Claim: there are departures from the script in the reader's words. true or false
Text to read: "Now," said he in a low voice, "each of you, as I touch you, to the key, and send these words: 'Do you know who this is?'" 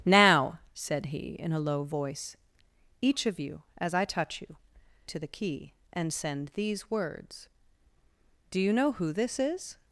false